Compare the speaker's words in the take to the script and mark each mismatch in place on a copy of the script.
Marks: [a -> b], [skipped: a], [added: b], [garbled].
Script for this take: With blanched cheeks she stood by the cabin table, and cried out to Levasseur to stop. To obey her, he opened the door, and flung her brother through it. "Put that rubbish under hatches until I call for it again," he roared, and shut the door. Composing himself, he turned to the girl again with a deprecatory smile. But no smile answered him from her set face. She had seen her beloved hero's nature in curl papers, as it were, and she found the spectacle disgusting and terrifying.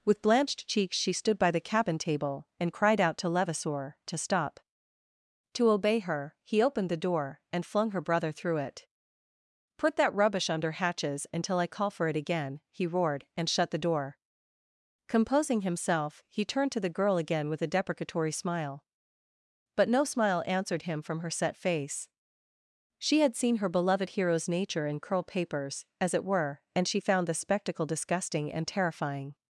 With blanched cheeks she stood by the cabin table, and cried out to Levasseur to stop. To obey her, he opened the door, and flung her brother through it. "Put that rubbish under hatches until I call for it again," he roared, and shut the door. Composing himself, he turned to the girl again with a deprecatory smile. But no smile answered him from her set face. She had seen her beloved hero's nature in curl papers, as it were, and she found the spectacle disgusting and terrifying.